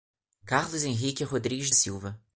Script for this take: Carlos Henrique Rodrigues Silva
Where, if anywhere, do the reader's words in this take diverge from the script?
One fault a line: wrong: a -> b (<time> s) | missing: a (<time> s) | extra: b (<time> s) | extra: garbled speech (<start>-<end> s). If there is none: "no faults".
no faults